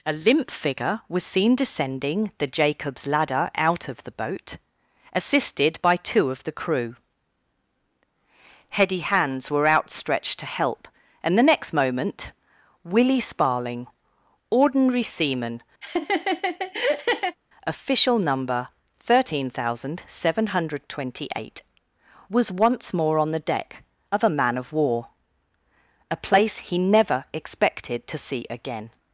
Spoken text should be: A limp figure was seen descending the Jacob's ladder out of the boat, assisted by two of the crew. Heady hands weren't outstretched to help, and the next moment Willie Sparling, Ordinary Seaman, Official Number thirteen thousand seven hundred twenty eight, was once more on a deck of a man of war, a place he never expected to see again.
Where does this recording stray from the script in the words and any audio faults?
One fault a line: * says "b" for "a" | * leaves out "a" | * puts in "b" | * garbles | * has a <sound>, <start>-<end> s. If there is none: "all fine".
* says "were" for "weren't"
* has a laugh, 15.8-17.4 s
* says "the" for "a"